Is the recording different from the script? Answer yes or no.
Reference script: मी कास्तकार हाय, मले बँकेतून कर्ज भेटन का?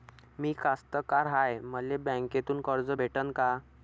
no